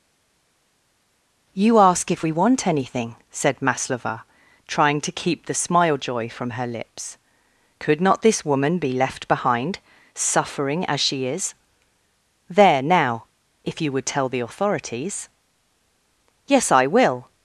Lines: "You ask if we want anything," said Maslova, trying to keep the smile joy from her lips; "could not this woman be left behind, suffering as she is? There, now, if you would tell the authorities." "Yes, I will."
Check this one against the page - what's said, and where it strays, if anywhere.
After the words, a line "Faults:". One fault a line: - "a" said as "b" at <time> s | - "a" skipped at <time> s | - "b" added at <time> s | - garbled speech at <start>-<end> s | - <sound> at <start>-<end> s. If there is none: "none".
"You ask if we want anything," said Maslova, trying to keep the smile joy from her lips; "could not this woman be left behind, suffering as she is? There, now, if you would tell the authorities." "Yes, I will."
Faults:
none